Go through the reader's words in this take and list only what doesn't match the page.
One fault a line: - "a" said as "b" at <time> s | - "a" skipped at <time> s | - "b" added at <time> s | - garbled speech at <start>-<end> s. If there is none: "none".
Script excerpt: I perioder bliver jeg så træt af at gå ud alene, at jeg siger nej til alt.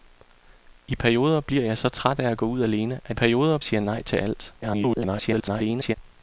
- "jeg" said as "perioder" at 3.1 s
- garbled speech at 4.6-6.0 s